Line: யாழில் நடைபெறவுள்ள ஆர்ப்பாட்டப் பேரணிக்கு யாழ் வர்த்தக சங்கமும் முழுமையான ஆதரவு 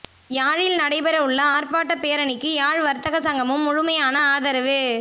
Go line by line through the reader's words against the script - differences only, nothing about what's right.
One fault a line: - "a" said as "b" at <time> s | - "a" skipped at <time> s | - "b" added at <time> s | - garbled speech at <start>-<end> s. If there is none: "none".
none